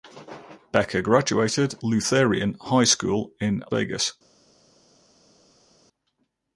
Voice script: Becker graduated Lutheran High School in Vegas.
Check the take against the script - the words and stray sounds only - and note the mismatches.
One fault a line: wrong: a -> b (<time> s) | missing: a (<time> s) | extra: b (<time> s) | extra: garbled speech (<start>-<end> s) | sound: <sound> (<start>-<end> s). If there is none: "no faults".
no faults